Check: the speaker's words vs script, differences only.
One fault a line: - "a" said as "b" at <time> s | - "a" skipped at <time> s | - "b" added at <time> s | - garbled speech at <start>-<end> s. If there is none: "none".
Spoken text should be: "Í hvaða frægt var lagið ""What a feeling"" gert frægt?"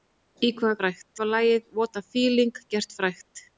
none